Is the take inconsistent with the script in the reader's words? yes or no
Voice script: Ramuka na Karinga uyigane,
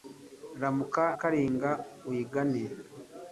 yes